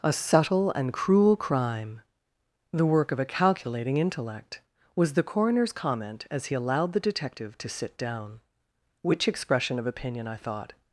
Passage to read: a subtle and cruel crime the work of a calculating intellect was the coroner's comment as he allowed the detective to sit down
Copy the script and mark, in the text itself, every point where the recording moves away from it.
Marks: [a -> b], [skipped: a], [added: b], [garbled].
a subtle and cruel crime the work of a calculating intellect was the coroner's comment as he allowed the detective to sit down [added: which expression of opinion i thought]